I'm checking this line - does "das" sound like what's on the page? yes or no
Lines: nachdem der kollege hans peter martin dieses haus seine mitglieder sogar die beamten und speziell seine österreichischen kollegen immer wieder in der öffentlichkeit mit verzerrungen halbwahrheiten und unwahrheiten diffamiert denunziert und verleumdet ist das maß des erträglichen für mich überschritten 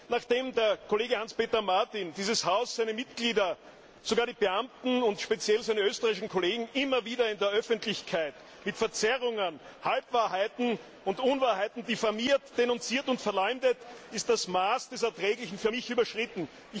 yes